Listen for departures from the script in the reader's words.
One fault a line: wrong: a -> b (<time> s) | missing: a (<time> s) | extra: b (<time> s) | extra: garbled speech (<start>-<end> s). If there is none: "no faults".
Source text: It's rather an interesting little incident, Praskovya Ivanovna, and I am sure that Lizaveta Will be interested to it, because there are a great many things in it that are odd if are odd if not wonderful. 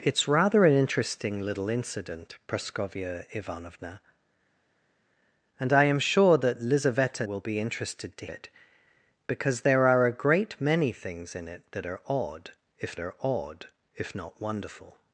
no faults